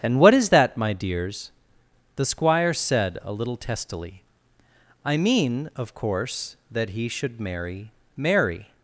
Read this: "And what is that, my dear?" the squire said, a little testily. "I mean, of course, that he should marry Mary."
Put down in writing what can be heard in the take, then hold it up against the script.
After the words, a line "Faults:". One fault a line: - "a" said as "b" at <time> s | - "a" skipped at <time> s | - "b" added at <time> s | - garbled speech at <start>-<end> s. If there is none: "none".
"And what is that, my dears?" the squire said, a little testily. "I mean, of course, that he should marry Mary."
Faults:
- "dear" said as "dears" at 0.9 s